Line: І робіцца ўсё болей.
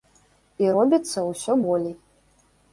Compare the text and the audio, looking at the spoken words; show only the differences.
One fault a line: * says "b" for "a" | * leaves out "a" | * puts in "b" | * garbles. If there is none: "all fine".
all fine